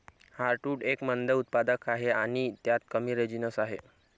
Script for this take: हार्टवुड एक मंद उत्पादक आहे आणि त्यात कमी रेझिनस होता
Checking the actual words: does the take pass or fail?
fail